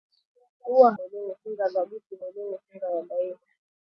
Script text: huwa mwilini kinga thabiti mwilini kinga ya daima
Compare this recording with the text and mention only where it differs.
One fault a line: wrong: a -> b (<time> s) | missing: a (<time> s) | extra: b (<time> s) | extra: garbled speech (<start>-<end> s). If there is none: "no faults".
no faults